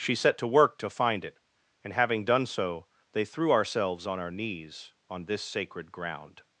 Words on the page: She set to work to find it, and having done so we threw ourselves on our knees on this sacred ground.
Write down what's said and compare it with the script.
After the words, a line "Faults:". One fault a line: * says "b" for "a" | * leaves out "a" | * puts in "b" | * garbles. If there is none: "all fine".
She set to work to find it, and having done so they threw ourselves on our knees on this sacred ground.
Faults:
* says "they" for "we"